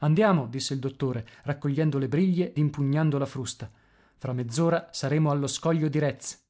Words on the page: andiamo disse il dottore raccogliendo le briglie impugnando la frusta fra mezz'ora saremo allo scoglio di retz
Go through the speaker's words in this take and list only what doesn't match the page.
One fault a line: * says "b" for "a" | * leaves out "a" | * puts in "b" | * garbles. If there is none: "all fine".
all fine